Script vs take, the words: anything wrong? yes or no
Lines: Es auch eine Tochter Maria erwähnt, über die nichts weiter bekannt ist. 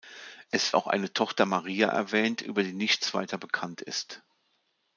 no